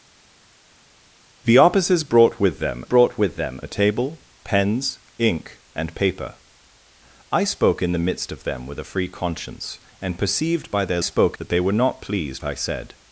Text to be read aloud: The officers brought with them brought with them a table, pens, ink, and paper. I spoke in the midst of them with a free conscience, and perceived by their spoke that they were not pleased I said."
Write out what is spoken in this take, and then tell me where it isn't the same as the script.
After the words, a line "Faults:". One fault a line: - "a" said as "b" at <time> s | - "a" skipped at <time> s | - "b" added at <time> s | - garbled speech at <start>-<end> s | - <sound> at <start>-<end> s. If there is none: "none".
The officers brought with them brought with them a table, pens, ink, and paper. I spoke in the midst of them with a free conscience, and perceived by their spoke that they were not pleased I said."
Faults:
none